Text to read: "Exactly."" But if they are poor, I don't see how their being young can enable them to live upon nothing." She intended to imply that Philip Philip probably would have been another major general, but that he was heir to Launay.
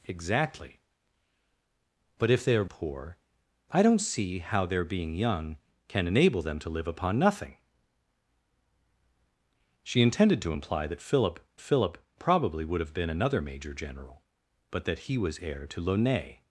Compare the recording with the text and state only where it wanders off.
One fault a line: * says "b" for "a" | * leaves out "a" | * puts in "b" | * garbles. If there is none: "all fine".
all fine